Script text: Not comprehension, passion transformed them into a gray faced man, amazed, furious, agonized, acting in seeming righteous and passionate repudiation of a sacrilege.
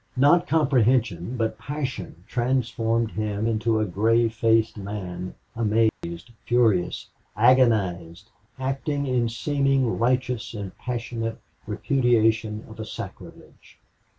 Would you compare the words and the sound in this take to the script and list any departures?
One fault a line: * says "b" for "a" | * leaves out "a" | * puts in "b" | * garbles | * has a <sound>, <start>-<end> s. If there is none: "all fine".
* puts in "but"
* says "him" for "them"
* has a dropout, 5.9-6.0 s